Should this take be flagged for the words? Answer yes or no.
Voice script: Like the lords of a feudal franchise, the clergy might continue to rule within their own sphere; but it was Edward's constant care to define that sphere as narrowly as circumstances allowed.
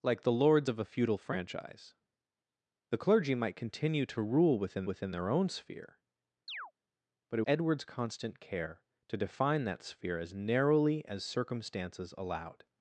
yes